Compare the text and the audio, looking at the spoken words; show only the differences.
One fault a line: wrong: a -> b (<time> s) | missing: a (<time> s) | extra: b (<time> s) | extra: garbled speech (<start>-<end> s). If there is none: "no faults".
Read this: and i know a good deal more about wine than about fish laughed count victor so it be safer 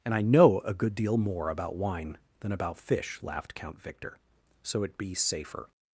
no faults